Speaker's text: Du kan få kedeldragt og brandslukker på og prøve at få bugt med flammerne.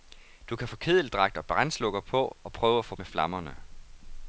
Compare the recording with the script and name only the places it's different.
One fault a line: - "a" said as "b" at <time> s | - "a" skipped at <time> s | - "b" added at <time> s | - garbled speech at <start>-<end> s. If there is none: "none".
- "bugt" skipped at 3.0 s